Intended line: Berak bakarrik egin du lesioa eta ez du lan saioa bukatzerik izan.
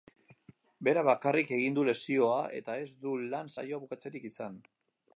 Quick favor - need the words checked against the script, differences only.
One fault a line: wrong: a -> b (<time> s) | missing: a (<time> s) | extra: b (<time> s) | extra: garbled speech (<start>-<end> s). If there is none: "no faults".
no faults